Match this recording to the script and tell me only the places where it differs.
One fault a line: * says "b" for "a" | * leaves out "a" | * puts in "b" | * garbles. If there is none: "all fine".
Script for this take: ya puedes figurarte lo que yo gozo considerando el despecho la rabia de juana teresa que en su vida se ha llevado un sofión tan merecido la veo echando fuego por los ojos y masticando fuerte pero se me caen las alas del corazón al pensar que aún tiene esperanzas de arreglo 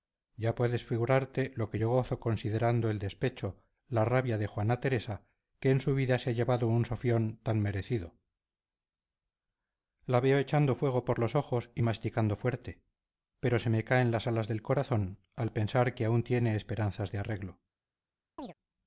all fine